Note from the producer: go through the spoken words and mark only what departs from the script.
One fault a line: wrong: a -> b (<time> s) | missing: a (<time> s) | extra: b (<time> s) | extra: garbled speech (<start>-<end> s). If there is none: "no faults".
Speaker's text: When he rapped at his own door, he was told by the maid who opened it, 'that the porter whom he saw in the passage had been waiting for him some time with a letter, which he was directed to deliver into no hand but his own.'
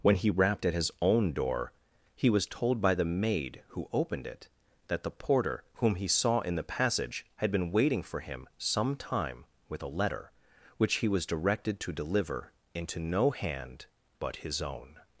no faults